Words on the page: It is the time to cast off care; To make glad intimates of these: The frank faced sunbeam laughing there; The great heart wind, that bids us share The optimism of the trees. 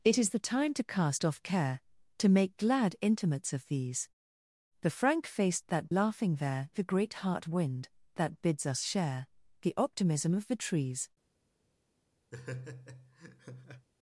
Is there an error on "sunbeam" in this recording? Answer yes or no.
yes